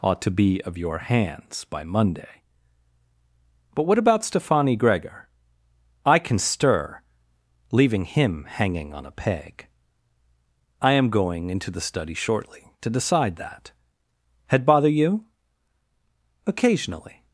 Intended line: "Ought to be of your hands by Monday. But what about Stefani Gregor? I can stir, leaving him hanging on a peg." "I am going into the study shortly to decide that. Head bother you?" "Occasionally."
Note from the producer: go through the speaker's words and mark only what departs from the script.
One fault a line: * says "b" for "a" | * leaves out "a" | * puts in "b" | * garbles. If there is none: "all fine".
all fine